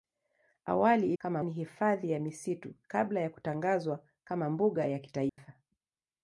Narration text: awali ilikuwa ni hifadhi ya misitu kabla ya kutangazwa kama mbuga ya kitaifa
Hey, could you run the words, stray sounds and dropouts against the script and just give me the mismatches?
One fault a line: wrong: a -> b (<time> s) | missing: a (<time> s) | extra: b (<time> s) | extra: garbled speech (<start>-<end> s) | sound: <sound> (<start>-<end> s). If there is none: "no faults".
wrong: ilikuwa -> kama (1.2 s)
sound: dropout (5.3-5.4 s)